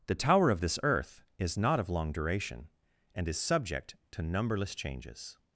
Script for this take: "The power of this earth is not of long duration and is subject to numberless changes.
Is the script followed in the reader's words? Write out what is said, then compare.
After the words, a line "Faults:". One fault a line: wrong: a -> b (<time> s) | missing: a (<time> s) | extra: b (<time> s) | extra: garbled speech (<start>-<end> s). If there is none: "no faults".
"The tower of this earth is not of long duration and is subject to numberless changes.
Faults:
wrong: power -> tower (0.1 s)